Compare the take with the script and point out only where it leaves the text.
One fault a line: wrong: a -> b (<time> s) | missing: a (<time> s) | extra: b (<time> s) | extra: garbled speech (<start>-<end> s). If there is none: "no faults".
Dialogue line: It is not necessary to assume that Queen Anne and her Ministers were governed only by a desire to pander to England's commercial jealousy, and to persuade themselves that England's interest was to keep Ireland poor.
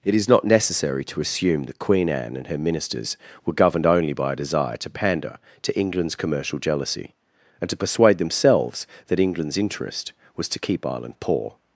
no faults